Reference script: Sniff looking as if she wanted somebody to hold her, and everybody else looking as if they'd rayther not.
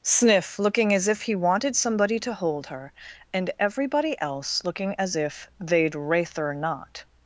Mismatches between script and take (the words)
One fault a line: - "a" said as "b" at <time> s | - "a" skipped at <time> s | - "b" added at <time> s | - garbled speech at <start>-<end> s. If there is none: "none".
- "she" said as "he" at 1.2 s